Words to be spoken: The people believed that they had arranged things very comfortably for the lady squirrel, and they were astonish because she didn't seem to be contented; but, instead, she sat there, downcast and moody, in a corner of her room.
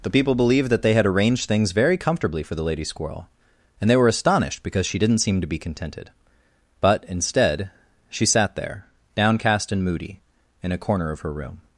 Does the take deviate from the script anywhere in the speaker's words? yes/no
yes